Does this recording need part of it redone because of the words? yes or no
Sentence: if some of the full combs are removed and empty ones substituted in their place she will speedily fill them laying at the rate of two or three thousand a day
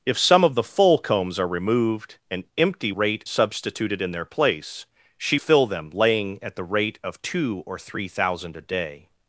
yes